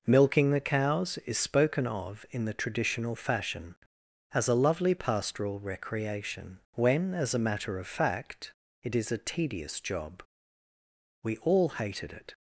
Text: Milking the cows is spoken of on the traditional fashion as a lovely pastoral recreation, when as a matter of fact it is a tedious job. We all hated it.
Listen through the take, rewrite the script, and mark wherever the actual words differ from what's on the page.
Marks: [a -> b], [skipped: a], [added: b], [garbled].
Milking the cows is spoken of [on -> in] the traditional fashion as a lovely pastoral recreation, when as a matter of fact it is a tedious job. We all hated it.